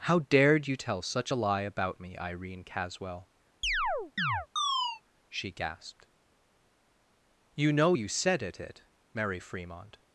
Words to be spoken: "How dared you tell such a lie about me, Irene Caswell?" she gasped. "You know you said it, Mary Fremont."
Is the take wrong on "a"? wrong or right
right